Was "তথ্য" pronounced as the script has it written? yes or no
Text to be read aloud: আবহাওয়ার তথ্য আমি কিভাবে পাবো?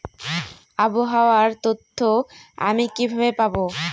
yes